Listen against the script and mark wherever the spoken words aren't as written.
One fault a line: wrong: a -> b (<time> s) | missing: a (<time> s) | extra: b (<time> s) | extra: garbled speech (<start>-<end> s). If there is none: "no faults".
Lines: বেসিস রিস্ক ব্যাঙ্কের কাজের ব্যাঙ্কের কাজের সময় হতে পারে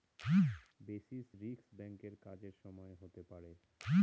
missing: ব্যাঙ্কের কাজের (2.5 s)